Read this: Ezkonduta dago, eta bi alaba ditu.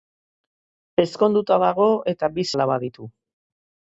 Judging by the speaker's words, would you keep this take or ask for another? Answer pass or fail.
pass